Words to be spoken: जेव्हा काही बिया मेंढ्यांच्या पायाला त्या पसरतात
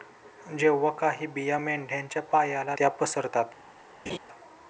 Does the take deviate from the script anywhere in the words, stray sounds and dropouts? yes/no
yes